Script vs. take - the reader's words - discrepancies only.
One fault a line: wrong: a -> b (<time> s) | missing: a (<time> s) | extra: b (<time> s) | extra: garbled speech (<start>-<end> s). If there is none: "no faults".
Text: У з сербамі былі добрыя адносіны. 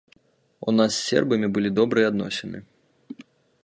extra: нас (0.8 s)